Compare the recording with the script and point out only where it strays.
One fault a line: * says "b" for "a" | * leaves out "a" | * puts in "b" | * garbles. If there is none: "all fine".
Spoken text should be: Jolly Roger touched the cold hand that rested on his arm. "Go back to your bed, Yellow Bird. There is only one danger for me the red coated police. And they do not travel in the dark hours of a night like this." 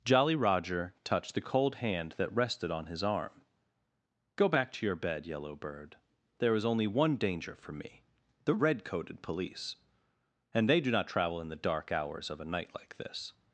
all fine